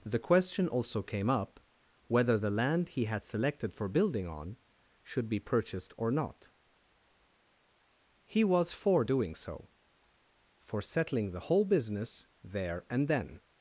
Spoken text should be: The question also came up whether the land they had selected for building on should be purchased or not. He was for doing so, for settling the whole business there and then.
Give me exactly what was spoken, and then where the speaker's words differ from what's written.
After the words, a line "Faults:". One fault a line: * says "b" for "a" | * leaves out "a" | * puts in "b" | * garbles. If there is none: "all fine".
The question also came up whether the land he had selected for building on should be purchased or not. He was for doing so, for settling the whole business there and then.
Faults:
* says "he" for "they"